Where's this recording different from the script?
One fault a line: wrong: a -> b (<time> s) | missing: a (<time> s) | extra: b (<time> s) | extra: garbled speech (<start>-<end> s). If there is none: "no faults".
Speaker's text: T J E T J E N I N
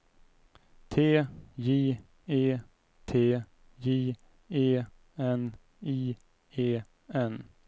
extra: E (6.6 s)